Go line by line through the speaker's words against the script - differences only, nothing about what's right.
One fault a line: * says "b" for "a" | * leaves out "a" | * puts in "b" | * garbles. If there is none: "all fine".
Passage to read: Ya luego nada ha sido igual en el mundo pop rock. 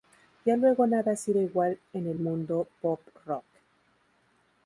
all fine